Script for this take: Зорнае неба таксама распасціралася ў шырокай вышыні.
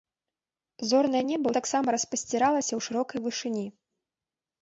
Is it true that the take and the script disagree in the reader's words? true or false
false